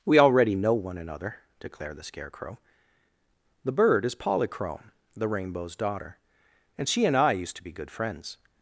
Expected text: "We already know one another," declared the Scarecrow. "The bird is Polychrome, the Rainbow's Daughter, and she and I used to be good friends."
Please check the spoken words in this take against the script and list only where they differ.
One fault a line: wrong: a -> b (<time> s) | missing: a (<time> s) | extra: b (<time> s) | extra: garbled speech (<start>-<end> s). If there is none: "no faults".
no faults